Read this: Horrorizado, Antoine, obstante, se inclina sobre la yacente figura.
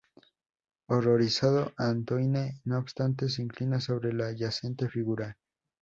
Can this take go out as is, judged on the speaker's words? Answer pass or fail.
fail